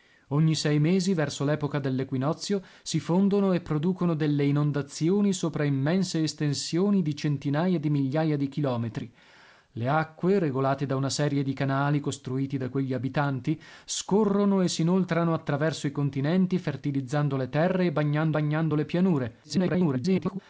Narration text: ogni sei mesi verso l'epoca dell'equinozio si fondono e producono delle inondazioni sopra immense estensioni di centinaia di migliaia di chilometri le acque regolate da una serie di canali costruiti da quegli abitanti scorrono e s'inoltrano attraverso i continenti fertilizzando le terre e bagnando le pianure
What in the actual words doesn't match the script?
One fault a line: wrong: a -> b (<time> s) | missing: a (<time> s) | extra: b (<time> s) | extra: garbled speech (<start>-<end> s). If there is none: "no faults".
extra: bagnando (18.3 s)
extra: garbled speech (19.4-20.4 s)